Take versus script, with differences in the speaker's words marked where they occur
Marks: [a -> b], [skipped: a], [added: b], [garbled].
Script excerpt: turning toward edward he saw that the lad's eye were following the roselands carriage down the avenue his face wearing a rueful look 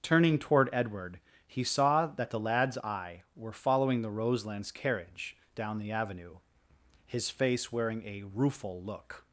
turning toward edward he saw that the lad's eye were following the roselands carriage down the avenue his face wearing a rueful look